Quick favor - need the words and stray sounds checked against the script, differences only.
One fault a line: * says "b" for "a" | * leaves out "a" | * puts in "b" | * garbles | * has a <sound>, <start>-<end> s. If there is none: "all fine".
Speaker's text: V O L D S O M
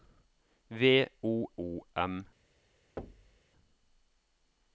* leaves out "L D S"
* has a thud, 3.0-3.4 s